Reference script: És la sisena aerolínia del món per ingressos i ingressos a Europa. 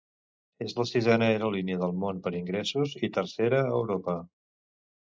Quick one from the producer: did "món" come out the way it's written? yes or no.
yes